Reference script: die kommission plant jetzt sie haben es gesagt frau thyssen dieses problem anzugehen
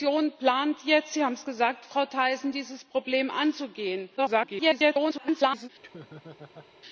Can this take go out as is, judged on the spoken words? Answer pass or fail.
fail